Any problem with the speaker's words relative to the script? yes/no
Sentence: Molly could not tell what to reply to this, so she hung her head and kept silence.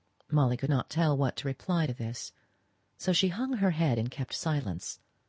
no